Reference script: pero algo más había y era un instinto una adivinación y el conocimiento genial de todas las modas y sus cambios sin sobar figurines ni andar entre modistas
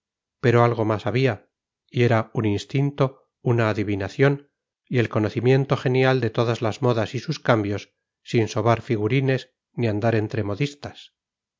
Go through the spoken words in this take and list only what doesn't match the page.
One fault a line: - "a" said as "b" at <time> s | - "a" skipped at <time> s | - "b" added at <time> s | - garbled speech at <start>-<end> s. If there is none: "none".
none